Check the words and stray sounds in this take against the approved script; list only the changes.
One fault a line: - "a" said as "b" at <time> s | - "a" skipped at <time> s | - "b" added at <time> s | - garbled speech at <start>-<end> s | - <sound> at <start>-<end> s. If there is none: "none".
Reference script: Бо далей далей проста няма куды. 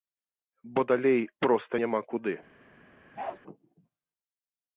- "далей" skipped at 1.2 s
- bark at 3.2-3.4 s